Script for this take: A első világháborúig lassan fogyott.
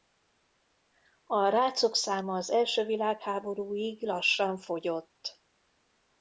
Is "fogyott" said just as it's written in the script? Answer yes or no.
yes